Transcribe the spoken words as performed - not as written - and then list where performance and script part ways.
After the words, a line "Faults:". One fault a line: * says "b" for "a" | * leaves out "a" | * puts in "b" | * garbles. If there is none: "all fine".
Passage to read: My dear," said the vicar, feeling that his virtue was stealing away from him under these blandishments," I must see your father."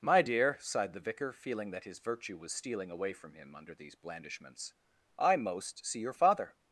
My dear," sighed the vicar, feeling that his virtue was stealing away from him under these blandishments," I most see your father."
Faults:
* says "sighed" for "said"
* says "most" for "must"